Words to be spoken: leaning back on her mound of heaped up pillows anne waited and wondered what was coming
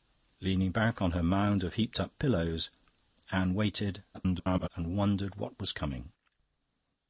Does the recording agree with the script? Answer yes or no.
no